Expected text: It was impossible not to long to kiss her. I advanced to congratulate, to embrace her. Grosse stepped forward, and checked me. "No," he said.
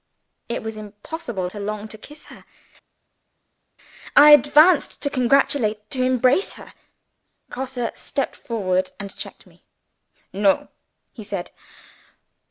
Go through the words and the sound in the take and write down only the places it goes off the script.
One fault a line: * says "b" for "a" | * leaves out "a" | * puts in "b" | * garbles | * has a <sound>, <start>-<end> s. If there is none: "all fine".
* leaves out "not"